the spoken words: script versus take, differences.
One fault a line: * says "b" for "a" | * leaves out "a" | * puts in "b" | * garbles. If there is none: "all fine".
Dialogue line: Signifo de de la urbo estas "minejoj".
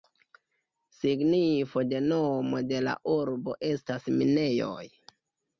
* puts in "nomo"